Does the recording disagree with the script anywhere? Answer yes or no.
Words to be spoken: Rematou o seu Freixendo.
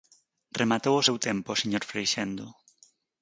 yes